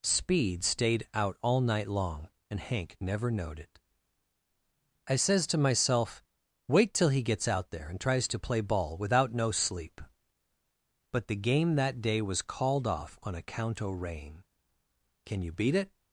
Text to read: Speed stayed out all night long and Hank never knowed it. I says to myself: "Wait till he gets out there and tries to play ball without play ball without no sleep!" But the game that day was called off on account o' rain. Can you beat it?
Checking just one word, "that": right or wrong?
right